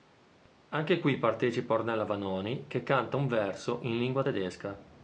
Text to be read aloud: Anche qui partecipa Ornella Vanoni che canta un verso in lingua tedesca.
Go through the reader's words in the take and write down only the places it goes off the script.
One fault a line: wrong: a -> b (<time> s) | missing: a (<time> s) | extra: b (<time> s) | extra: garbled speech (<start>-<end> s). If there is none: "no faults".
no faults